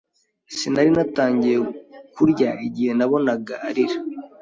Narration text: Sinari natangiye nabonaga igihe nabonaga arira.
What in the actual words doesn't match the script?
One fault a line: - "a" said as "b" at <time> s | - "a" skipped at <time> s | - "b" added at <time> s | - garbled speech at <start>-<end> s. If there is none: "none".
- "nabonaga" said as "kurya" at 2.1 s